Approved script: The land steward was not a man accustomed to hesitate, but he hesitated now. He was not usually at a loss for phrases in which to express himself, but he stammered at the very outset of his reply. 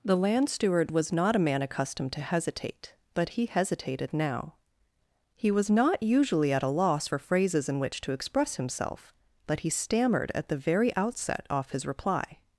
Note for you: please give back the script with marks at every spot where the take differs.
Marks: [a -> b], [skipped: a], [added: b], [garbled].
The land steward was not a man accustomed to hesitate, but he hesitated now. He was not usually at a loss for phrases in which to express himself, but he stammered at the very outset [of -> off] his reply.